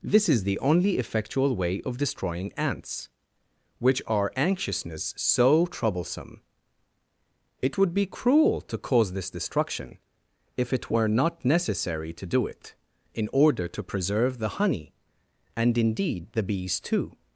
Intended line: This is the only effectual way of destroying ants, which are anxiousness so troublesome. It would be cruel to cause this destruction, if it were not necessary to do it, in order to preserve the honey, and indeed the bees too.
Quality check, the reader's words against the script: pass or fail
pass